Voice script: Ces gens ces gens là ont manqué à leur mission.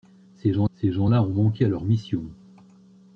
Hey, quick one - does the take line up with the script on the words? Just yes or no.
yes